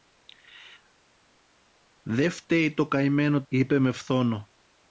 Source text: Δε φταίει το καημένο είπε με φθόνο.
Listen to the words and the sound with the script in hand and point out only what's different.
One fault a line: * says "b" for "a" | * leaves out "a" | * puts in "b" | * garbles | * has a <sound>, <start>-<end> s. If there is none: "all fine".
all fine